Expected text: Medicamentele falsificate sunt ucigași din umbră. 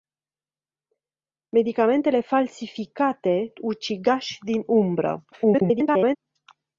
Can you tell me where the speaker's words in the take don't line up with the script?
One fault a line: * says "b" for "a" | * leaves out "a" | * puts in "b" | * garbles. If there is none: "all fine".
* leaves out "sunt"
* garbles